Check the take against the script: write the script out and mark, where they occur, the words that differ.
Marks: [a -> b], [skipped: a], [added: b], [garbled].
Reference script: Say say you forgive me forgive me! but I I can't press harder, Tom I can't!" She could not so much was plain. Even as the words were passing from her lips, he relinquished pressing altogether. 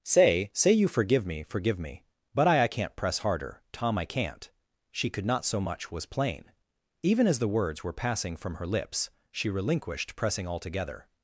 Say say you forgive me forgive me! but I I can't press harder, Tom I can't!" She could not so much was plain. Even as the words were passing from her lips, [he -> she] relinquished pressing altogether.